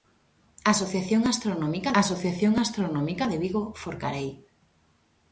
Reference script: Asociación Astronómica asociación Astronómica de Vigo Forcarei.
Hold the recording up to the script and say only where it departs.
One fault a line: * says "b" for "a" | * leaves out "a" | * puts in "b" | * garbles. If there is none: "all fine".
all fine